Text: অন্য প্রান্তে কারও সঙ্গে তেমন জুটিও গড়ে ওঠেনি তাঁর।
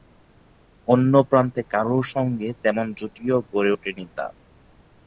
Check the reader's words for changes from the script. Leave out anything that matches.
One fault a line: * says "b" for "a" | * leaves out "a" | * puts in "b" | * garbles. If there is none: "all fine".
all fine